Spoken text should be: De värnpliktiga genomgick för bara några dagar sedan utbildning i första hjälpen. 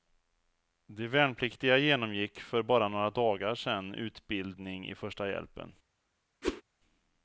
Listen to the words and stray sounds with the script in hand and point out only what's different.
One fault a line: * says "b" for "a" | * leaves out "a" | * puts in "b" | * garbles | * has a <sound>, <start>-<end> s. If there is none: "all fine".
* has a whoosh, 6.4-6.6 s